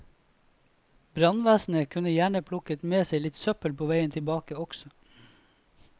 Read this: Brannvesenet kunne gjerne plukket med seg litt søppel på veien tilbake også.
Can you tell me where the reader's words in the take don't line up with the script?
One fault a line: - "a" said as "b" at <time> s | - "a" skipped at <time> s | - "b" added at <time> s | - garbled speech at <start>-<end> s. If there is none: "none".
none